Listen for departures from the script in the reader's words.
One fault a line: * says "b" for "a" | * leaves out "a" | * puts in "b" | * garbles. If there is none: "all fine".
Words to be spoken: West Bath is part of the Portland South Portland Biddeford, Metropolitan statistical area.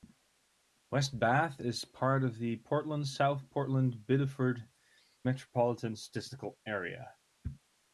all fine